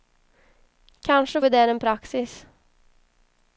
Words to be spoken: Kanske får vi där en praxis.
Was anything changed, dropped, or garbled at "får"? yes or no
yes